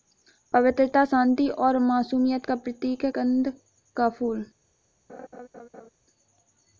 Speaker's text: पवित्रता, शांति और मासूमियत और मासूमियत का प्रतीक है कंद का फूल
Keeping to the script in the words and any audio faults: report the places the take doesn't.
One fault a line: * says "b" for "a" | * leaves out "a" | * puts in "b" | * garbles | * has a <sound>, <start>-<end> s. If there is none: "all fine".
* leaves out "और मासूमियत"
* has a laugh, 5.1-5.9 s